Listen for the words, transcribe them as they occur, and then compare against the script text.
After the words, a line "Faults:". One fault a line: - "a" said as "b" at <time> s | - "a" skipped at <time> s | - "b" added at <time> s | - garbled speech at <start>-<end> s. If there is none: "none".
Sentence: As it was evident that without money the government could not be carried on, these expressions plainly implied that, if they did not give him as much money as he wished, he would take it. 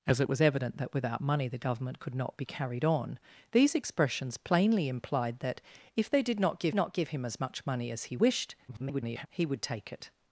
As it was evident that without money the government could not be carried on, these expressions plainly implied that, if they did not give not give him as much money as he wished, [garbled] he would take it.
Faults:
- "not give" added at 6.7 s
- garbled speech at 8.7-9.3 s